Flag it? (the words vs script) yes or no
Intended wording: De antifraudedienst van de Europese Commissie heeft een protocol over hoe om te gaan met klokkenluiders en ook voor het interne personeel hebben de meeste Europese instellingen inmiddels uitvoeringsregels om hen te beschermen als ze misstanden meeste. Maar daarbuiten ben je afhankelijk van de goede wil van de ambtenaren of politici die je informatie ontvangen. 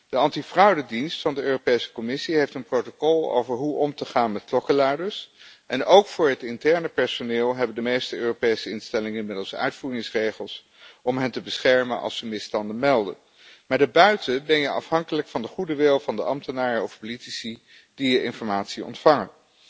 yes